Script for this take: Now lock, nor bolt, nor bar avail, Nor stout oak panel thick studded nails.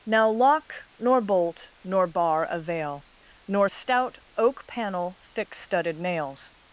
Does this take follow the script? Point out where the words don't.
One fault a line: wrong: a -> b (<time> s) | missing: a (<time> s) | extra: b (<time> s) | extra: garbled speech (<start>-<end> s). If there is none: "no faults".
no faults